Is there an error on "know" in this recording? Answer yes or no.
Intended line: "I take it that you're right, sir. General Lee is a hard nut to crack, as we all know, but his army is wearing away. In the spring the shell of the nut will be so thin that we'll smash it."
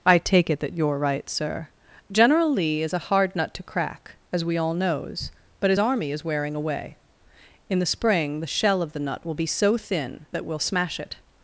yes